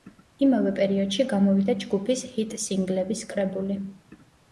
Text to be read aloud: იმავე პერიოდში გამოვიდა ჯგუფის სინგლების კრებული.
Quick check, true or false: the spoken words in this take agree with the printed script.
false